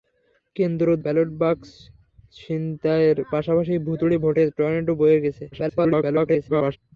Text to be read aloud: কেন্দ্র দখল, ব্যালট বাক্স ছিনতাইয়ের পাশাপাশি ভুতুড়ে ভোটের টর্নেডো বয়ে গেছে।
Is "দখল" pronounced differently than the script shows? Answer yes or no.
yes